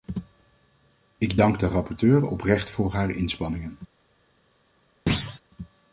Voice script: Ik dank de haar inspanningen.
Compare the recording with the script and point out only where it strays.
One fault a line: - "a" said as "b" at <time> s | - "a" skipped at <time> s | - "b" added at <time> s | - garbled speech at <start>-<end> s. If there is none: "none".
- "rapporteur oprecht voor" added at 1.7 s